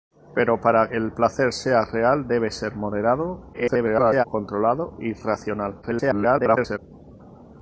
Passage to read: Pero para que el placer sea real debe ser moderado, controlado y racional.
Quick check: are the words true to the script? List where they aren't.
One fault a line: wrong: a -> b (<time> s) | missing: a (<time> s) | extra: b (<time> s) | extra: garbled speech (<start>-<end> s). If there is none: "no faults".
missing: que (0.9 s)
extra: garbled speech (3.5-4.2 s)
extra: garbled speech (5.8-6.8 s)